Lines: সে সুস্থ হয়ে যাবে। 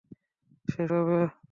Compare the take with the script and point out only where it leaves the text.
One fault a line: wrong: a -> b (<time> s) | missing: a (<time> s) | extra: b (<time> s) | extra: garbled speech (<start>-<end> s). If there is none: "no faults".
missing: সুস্থ হয়ে (0.8 s)